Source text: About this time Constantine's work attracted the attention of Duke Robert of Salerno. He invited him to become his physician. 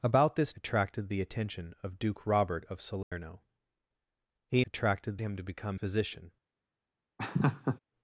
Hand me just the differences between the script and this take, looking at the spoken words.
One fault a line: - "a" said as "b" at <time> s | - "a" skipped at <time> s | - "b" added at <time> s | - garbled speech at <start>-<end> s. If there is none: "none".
- "time Constantine's work" skipped at 0.5 s
- "invited" said as "attracted" at 4.6 s
- "his" skipped at 5.8 s